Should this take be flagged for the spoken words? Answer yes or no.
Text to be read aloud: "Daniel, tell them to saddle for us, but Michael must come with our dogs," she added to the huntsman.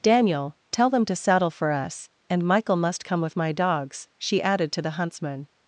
yes